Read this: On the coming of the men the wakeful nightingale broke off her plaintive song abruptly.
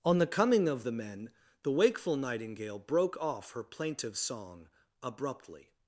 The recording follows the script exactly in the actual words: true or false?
true